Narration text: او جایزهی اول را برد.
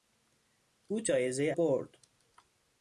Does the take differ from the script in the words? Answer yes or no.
yes